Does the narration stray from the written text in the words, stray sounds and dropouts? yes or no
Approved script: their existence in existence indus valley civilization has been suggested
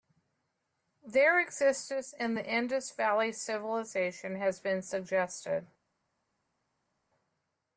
yes